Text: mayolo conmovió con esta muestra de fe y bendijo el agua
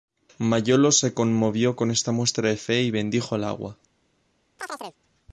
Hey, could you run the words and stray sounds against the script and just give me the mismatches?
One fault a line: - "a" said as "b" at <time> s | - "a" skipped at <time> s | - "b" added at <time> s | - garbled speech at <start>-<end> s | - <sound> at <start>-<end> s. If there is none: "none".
- "se" added at 0.9 s
- chirp at 4.6-5.0 s